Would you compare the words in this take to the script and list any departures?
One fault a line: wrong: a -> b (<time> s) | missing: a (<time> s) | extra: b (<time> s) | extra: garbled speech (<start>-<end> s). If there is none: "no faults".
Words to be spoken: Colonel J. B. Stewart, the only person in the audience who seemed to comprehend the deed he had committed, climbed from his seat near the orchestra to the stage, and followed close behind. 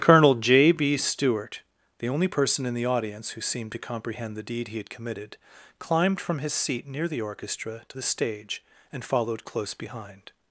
no faults